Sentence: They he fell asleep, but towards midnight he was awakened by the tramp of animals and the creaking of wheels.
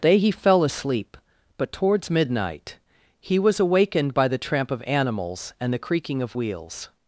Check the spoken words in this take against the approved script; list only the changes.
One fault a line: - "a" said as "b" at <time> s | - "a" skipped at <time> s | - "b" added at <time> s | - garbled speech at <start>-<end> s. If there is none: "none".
none